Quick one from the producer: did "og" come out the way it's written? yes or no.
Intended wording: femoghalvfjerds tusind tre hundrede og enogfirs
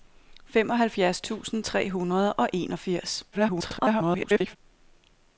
yes